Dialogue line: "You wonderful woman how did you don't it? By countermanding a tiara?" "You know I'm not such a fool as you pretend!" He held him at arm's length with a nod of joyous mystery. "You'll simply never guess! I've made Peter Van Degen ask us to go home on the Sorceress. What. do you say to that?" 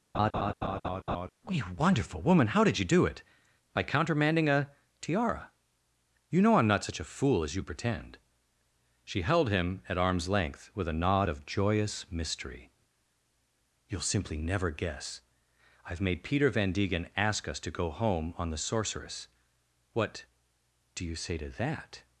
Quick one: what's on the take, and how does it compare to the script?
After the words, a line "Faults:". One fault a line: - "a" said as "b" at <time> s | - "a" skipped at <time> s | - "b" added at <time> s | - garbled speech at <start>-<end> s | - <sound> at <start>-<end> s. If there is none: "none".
"You wonderful woman how did you do it? By countermanding a tiara?" "You know I'm not such a fool as you pretend!" She held him at arm's length with a nod of joyous mystery. "You'll simply never guess! I've made Peter Van Degen ask us to go home on the Sorceress. What. do you say to that?"
Faults:
- laugh at 0.1-1.3 s
- "don't" said as "do" at 2.9 s
- "He" said as "She" at 9.0 s